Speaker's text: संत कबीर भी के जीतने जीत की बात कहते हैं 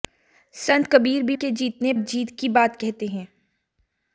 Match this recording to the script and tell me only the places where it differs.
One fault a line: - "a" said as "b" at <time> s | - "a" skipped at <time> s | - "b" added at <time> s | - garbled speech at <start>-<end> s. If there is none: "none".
none